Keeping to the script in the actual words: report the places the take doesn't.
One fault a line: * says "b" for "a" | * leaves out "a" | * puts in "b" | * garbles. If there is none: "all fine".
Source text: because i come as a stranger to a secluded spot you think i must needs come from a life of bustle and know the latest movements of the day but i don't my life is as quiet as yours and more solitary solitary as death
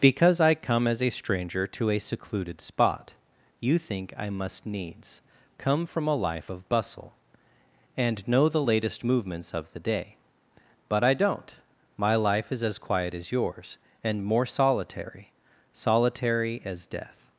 all fine